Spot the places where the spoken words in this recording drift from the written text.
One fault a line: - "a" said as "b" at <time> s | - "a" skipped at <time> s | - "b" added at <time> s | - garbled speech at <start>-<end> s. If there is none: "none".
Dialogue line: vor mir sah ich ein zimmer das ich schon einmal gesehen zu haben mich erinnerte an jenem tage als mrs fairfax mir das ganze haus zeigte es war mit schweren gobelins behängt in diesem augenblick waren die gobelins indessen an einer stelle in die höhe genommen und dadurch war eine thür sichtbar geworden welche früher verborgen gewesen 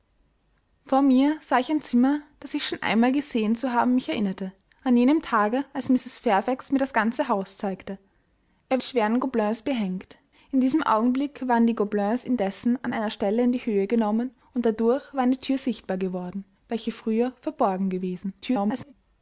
- "war mit" skipped at 8.8 s
- garbled speech at 18.4-18.9 s